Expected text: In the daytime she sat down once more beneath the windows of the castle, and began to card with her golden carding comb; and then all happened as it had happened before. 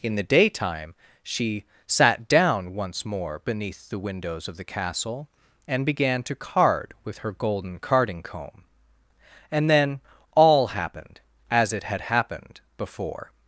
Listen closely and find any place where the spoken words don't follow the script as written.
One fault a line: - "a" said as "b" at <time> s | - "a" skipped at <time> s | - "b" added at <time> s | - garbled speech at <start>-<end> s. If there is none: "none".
none